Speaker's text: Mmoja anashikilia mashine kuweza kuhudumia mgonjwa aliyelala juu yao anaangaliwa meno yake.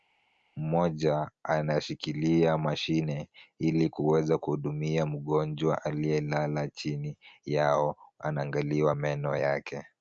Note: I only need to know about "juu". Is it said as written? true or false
false